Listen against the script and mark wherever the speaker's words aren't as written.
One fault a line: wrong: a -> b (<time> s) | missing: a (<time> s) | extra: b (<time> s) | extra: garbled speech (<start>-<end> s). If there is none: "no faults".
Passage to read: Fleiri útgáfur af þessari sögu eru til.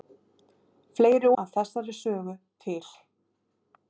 missing: útgáfur (1.3 s)
missing: eru (2.4 s)